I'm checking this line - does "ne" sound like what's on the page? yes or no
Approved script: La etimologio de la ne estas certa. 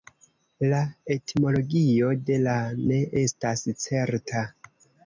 yes